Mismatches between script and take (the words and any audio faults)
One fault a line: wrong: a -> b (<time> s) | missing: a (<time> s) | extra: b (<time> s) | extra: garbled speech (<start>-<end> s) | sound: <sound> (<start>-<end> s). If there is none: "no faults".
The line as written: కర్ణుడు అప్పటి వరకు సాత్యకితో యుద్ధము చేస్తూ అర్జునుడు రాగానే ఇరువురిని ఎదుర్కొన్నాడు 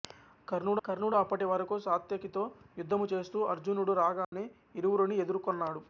extra: కర్ణుడు (0.8 s)
sound: dropout (4.2-4.3 s)